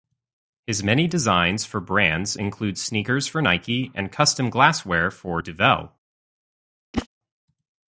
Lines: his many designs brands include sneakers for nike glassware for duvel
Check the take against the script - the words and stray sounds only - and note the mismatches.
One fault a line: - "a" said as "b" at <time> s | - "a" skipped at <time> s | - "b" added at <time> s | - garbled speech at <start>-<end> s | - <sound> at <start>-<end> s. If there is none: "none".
- "for" added at 1.6 s
- "and custom" added at 3.9 s
- whoosh at 6.9-7.1 s